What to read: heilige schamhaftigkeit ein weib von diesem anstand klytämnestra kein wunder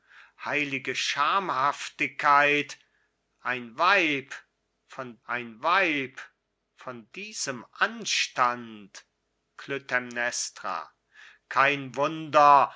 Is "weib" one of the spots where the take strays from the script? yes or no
no